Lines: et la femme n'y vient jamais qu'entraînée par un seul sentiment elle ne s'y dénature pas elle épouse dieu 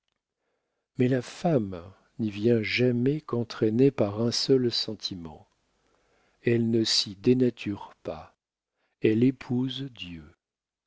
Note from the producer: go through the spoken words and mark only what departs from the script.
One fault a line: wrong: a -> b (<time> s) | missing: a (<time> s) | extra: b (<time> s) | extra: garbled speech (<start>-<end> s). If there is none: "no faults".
wrong: et -> mais (1.0 s)